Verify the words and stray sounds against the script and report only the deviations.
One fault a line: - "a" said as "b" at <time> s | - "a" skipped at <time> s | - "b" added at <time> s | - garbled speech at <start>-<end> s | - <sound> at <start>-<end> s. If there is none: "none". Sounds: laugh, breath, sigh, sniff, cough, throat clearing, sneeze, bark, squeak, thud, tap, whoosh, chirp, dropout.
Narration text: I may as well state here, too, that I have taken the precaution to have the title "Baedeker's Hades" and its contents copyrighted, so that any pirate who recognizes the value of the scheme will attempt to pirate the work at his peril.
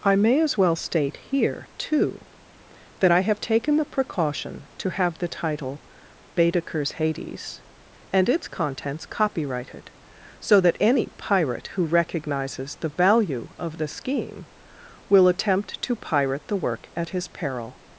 none